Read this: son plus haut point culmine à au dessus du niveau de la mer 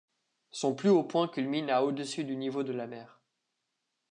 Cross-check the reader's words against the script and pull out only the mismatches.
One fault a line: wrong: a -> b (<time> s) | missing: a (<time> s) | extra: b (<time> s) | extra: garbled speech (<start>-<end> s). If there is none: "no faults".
no faults